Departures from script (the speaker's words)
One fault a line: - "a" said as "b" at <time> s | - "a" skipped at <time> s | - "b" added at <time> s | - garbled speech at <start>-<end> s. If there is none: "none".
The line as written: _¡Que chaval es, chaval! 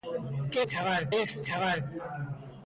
none